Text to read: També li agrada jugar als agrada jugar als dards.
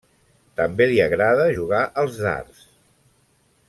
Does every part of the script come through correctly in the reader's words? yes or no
no